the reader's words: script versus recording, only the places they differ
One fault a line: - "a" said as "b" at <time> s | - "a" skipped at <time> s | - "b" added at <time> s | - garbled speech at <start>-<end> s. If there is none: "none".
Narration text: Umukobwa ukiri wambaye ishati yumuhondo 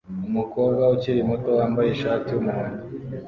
- "muto" added at 1.3 s